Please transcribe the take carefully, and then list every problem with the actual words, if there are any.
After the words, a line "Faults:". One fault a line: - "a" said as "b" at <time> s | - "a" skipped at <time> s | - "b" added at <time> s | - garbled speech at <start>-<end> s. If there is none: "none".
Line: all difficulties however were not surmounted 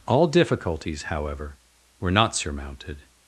all difficulties however were not surmounted
Faults:
none